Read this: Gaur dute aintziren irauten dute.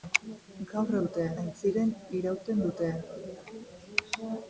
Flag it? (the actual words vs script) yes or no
no